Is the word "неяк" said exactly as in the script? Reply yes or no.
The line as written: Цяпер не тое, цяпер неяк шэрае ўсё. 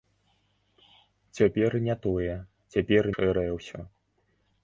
no